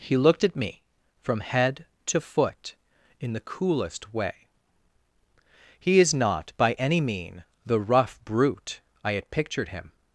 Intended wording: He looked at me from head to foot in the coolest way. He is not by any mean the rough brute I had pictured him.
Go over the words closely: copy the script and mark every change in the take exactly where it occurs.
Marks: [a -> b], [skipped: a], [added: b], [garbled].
He looked at me from head to foot in the coolest way. He is not by any mean the rough brute I had pictured him.